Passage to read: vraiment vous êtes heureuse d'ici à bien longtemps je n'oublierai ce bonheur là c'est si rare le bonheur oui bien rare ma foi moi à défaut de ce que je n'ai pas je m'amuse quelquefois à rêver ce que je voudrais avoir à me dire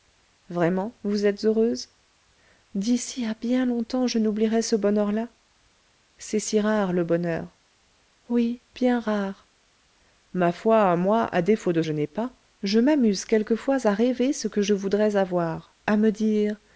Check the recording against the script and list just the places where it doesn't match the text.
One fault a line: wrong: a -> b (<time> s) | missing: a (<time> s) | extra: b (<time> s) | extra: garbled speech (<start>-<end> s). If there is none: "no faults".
missing: ce que (11.8 s)